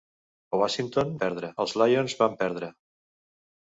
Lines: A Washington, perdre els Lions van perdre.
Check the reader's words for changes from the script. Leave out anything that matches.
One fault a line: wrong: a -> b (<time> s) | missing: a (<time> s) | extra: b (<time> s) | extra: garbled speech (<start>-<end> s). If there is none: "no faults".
no faults